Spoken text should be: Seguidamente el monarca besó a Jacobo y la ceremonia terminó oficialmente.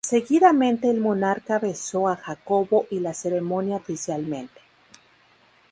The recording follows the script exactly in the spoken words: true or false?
false